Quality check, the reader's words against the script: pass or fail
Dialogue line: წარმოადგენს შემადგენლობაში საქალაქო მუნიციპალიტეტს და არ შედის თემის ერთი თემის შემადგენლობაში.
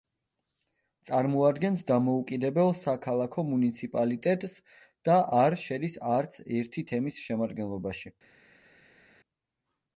fail